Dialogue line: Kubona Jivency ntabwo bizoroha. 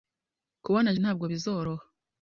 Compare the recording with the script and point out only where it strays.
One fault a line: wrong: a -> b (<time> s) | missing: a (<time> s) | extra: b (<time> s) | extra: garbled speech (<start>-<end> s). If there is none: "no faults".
missing: Jivency (0.9 s)